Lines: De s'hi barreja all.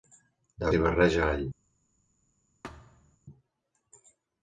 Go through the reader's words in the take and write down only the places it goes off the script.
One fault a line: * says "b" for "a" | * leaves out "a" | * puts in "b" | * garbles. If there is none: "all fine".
all fine